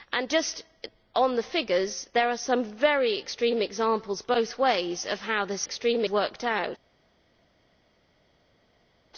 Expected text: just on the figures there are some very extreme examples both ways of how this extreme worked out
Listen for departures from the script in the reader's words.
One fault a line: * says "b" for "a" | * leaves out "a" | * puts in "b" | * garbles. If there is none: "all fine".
all fine